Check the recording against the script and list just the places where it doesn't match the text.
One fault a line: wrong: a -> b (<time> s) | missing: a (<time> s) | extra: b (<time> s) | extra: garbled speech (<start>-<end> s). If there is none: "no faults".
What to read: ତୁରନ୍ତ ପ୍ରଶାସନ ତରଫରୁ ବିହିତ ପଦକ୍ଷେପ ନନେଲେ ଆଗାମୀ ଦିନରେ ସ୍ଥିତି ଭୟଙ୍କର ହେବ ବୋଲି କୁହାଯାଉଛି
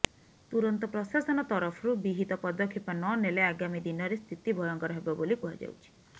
no faults